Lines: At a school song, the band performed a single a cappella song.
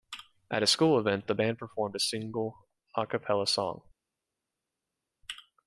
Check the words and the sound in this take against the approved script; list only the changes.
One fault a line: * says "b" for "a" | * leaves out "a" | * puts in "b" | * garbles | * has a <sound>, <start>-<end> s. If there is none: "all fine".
* says "event" for "song"